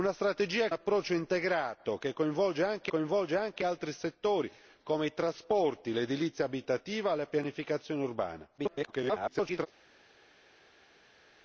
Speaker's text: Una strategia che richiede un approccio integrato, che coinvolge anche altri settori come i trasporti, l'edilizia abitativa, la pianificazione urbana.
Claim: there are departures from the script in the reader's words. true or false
true